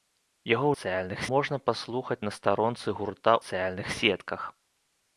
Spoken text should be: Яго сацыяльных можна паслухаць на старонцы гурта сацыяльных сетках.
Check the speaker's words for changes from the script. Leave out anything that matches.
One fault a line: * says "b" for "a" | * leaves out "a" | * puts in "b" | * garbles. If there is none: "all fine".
all fine